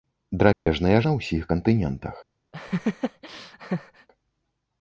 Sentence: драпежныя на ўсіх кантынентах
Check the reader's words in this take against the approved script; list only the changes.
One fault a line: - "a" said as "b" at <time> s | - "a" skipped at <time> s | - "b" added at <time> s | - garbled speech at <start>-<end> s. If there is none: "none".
none